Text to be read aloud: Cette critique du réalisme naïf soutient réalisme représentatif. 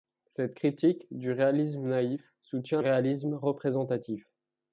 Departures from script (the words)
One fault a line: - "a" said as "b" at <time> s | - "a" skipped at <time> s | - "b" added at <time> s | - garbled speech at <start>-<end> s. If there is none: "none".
none